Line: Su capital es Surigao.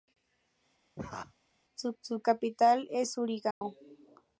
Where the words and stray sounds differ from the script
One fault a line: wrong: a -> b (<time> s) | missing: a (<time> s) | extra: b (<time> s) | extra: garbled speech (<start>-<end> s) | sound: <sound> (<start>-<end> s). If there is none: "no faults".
sound: laugh (1.0-1.3 s)
extra: su (2.0 s)
sound: dropout (3.5-3.6 s)